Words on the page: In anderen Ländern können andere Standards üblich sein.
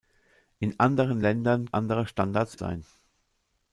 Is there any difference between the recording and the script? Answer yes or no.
yes